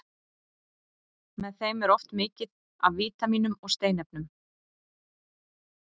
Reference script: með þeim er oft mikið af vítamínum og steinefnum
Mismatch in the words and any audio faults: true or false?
false